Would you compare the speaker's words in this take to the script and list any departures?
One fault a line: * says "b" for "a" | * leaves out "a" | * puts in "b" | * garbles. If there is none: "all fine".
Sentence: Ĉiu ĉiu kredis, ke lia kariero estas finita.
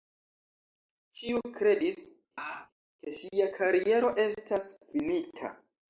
* leaves out "ĉiu"
* says "ŝia" for "lia"